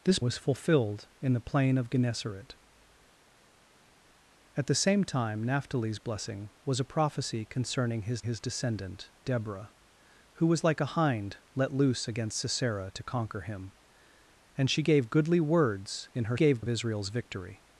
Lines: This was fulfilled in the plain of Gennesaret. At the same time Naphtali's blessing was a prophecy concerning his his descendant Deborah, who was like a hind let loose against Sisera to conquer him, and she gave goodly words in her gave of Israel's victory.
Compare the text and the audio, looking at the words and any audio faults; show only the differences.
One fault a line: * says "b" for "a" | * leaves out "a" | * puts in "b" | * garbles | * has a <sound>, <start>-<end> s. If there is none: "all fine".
all fine